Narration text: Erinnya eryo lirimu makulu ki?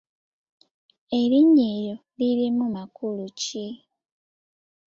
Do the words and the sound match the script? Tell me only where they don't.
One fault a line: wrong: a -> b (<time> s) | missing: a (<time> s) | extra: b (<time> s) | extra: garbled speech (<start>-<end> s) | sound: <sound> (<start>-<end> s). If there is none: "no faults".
no faults